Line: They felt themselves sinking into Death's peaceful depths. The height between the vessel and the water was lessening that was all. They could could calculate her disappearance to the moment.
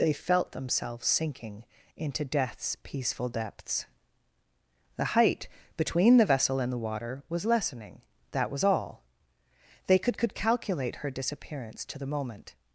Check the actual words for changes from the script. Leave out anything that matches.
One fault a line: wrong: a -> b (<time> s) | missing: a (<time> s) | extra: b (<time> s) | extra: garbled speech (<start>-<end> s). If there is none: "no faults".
no faults